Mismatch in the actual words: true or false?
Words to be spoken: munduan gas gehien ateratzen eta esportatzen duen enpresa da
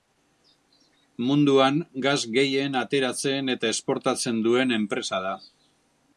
false